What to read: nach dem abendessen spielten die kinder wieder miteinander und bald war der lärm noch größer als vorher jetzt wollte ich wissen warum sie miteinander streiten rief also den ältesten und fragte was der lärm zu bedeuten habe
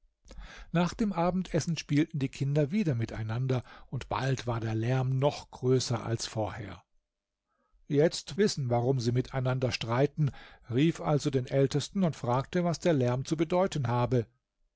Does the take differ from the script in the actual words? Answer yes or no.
yes